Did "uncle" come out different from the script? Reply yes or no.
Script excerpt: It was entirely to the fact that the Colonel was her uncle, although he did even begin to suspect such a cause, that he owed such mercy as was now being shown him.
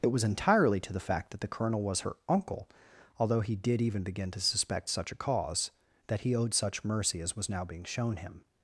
no